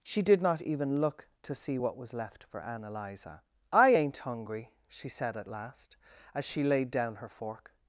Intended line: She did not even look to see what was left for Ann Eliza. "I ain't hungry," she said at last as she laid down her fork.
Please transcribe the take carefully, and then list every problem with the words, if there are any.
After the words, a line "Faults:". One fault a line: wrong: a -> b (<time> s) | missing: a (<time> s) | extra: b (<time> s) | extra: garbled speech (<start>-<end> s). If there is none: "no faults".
She did not even look to see what was left for Ann Eliza. "I ain't hungry," she said at last as she laid down her fork.
Faults:
no faults